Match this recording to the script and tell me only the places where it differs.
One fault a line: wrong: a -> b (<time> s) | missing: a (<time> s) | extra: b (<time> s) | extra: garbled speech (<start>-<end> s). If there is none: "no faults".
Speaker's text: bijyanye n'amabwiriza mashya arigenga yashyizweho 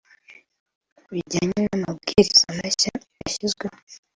missing: arigenga (2.9 s)